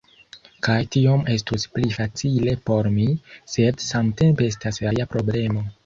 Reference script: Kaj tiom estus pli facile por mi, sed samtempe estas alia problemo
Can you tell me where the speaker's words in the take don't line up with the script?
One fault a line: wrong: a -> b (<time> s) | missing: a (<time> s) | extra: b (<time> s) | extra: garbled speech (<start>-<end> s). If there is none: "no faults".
no faults